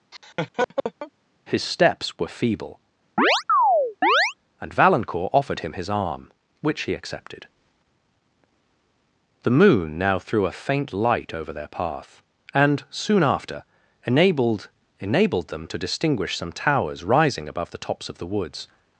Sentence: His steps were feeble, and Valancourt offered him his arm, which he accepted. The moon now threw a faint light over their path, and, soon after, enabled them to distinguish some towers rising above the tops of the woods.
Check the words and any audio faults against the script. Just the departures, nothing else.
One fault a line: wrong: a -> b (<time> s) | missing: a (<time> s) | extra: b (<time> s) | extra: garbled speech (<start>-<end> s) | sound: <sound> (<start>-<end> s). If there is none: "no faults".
sound: laugh (0.1-1.1 s)
sound: chirp (3.2-4.3 s)
extra: enabled (15.0 s)